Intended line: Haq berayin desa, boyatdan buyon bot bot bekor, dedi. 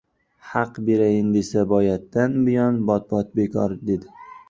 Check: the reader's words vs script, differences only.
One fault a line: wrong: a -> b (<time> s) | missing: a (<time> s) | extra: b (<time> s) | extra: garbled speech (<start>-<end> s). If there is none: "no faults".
no faults